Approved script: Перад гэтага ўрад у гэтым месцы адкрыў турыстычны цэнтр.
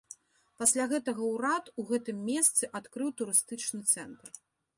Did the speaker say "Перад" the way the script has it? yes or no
no